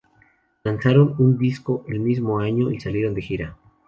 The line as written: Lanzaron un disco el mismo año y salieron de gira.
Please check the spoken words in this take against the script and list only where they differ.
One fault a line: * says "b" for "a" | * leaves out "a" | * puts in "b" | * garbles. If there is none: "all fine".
all fine